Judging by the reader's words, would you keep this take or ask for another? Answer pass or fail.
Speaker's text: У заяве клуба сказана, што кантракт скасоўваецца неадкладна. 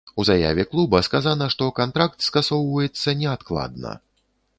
pass